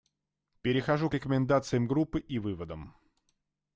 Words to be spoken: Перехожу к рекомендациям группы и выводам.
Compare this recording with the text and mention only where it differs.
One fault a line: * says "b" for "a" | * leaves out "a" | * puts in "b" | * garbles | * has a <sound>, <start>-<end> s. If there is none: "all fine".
all fine